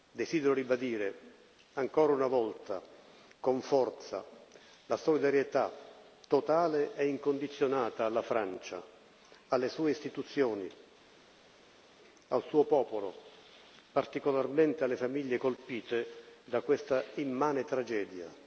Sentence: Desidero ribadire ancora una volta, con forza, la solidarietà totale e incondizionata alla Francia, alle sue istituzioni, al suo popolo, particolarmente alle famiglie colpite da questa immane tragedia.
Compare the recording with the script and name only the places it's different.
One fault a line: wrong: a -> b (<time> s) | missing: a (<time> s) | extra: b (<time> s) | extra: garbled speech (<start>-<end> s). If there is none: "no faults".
no faults